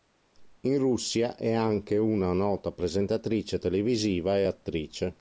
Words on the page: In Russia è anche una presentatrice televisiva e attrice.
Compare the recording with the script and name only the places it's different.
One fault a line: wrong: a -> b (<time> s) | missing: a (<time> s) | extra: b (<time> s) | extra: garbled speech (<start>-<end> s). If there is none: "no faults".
extra: nota (2.3 s)